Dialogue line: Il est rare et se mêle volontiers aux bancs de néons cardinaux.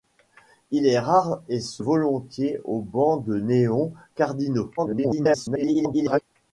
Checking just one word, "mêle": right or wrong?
wrong